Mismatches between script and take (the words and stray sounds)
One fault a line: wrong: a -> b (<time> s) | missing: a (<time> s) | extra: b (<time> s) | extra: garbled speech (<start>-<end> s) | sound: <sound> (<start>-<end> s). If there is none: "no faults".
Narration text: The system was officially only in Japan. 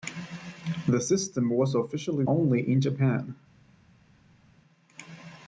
no faults